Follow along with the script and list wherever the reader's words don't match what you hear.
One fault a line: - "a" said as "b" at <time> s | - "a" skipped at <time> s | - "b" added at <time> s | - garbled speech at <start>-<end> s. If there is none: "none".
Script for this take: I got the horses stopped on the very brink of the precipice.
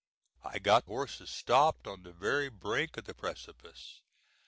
- "the" skipped at 0.9 s